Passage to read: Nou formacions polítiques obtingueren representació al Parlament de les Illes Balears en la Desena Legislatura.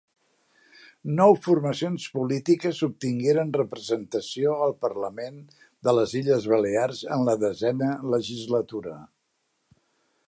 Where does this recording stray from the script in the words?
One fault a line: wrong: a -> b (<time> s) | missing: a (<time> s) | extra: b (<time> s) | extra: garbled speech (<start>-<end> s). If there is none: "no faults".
no faults